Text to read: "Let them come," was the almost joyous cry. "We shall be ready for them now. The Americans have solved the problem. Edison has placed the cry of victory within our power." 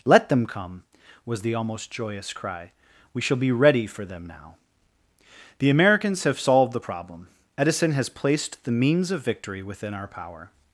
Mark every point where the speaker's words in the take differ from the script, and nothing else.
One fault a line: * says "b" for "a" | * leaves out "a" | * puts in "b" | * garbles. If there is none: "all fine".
* says "means" for "cry"